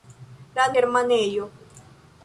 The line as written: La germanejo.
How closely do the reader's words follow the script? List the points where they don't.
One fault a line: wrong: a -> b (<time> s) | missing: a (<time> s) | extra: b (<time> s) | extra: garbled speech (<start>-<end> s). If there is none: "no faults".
no faults